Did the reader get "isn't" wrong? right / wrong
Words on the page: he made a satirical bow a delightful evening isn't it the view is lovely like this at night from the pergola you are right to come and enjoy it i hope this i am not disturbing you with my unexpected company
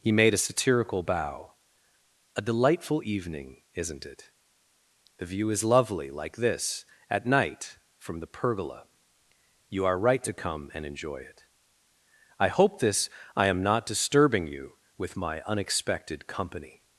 right